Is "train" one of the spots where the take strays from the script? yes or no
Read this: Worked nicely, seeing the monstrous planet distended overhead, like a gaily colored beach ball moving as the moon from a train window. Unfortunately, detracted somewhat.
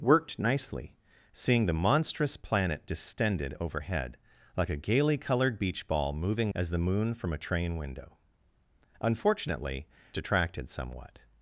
no